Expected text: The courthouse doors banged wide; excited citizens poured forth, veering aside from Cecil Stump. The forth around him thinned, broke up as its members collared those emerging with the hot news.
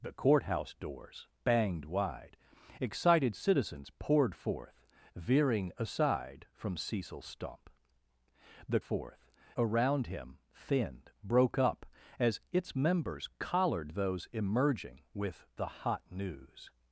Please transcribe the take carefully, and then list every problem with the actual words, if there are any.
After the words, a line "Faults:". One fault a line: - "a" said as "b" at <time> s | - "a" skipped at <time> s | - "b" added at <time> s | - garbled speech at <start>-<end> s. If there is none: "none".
The courthouse doors banged wide; excited citizens poured forth, veering aside from Cecil Stump. The forth around him thinned, broke up as its members collared those emerging with the hot news.
Faults:
none